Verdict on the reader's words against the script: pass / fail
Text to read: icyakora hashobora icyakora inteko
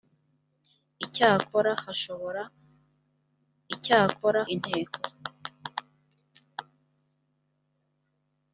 pass